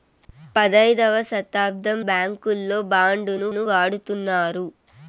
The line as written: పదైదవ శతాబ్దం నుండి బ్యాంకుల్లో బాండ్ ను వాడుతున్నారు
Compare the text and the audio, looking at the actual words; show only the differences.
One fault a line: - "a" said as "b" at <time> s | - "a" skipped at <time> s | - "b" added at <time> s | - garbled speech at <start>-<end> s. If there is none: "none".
- "నుండి" skipped at 2.0 s
- "ను" added at 3.5 s